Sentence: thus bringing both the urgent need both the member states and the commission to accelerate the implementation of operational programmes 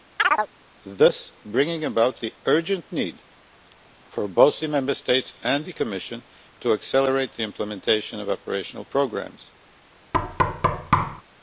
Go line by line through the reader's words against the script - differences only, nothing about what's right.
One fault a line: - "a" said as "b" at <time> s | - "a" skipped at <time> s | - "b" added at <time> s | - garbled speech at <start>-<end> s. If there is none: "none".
- "both" said as "about" at 1.8 s
- "for" added at 4.1 s